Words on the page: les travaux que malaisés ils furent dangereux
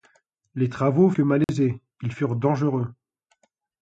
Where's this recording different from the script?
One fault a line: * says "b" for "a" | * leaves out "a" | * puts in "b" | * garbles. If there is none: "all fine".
all fine